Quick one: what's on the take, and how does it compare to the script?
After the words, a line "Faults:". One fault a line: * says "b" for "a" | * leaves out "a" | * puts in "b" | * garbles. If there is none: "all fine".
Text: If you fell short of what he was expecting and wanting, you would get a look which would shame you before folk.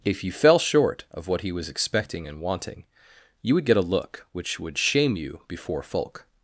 If you fell short of what he was expecting and wanting, you would get a look which would shame you before folk.
Faults:
all fine